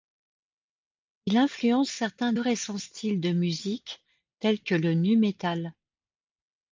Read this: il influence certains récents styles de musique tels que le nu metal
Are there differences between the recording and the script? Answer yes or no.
no